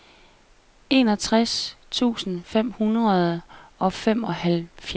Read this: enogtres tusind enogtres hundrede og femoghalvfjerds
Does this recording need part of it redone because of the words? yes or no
yes